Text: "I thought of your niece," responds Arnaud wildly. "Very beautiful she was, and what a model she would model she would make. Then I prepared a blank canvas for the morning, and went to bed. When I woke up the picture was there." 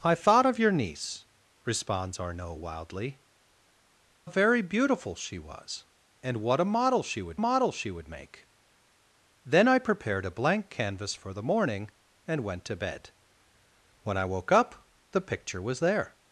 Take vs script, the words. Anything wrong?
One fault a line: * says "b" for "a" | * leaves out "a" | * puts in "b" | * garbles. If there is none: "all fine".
all fine